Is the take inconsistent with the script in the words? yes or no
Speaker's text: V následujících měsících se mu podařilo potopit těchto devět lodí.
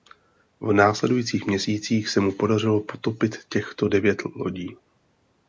no